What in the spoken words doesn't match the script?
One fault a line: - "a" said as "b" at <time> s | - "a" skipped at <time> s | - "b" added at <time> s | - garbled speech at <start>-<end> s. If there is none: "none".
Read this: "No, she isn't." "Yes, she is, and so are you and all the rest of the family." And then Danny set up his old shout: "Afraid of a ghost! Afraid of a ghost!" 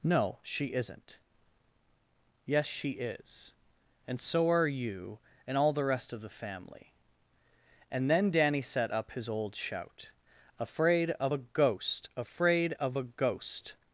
none